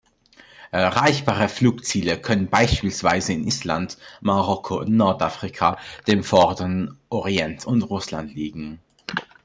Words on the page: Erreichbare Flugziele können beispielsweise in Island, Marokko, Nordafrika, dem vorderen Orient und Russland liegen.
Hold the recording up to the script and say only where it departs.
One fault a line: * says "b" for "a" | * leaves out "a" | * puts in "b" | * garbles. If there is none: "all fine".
all fine